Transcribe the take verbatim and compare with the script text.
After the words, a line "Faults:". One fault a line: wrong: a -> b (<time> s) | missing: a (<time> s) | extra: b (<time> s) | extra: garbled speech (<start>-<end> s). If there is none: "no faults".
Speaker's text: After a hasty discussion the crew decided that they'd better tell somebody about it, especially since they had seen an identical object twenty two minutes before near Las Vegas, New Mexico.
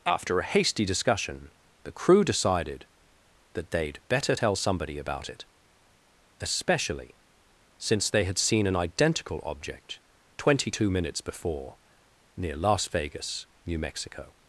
After a hasty discussion the crew decided that they'd better tell somebody about it, especially since they had seen an identical object twenty two minutes before near Las Vegas, New Mexico.
Faults:
no faults